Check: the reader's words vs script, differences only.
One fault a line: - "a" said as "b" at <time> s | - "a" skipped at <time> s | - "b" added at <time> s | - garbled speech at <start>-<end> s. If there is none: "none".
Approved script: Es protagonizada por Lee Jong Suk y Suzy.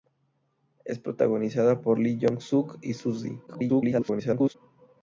- garbled speech at 3.5-4.5 s